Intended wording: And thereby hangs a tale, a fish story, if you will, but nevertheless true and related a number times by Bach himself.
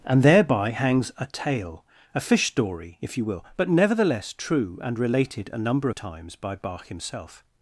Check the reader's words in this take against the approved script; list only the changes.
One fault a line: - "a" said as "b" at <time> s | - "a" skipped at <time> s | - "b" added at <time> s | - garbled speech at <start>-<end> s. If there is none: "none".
none